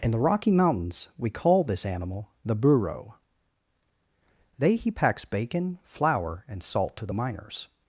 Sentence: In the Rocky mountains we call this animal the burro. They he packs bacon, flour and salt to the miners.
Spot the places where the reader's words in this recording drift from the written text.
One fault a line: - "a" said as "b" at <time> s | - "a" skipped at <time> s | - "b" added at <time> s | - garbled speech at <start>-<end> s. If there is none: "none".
none